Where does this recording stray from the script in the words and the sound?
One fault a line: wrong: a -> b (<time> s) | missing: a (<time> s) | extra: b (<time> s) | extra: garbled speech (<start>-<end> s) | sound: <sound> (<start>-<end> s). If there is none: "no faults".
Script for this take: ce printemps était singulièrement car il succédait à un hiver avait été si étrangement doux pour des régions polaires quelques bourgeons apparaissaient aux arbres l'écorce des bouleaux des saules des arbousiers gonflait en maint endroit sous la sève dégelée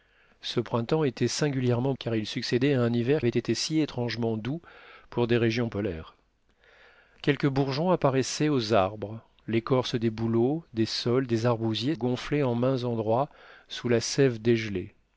no faults